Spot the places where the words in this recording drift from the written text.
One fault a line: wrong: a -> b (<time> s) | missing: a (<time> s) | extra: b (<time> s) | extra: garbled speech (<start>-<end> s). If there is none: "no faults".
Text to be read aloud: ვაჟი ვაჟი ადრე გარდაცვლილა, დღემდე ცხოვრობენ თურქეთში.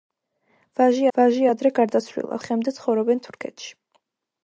no faults